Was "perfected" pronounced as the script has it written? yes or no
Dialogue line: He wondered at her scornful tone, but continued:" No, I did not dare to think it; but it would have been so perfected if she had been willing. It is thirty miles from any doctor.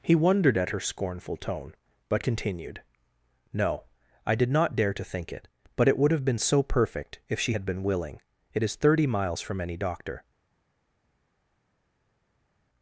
no